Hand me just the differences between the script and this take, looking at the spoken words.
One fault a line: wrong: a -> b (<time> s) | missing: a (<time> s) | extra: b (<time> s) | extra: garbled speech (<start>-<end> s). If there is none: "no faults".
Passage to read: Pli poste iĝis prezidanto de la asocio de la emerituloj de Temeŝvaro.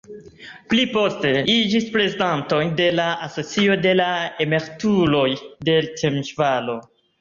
no faults